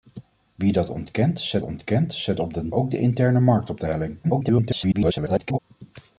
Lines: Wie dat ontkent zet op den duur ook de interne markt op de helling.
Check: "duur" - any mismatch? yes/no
yes